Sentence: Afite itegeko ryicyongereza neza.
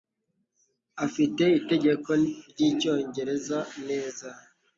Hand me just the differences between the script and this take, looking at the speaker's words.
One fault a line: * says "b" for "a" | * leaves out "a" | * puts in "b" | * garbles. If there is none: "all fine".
all fine